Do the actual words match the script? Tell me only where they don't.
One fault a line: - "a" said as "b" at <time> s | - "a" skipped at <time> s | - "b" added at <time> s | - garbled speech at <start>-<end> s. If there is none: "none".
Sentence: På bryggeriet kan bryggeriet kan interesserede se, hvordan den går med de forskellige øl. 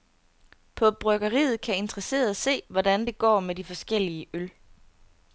- "bryggeriet kan" skipped at 1.8 s
- "den" said as "det" at 3.0 s